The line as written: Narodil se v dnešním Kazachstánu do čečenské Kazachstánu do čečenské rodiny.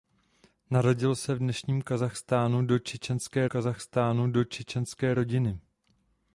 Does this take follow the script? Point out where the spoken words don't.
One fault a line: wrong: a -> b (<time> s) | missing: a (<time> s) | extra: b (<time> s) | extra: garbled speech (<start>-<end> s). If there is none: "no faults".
no faults